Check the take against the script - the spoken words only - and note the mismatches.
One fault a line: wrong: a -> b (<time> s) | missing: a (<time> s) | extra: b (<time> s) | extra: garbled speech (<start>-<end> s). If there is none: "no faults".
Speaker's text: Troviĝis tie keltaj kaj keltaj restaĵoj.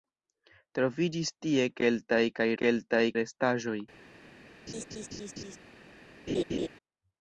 no faults